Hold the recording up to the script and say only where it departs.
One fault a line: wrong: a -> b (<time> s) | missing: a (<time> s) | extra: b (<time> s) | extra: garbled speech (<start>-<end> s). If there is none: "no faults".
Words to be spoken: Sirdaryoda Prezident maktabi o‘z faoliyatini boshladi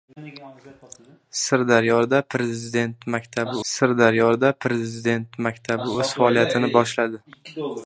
extra: sirdaryoda Prezident maktabi (3.7 s)